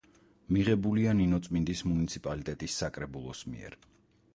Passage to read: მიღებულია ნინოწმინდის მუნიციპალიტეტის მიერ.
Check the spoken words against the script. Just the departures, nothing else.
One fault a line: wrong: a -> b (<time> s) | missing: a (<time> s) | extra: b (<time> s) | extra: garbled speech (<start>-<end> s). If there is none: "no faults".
extra: საკრებულოს (2.9 s)